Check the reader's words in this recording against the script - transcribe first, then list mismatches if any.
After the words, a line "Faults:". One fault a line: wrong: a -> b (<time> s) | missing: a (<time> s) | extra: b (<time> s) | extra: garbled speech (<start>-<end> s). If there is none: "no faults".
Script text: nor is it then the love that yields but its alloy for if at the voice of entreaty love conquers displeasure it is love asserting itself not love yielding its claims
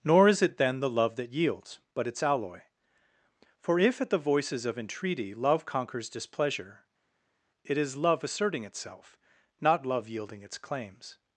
nor is it then the love that yields but its alloy for if at the voices of entreaty love conquers displeasure it is love asserting itself not love yielding its claims
Faults:
wrong: voice -> voices (4.2 s)